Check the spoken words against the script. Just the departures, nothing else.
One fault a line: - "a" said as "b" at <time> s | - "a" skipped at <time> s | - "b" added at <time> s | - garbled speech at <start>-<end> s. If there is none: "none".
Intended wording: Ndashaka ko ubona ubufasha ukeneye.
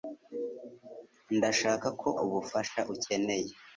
- "ubona" skipped at 2.1 s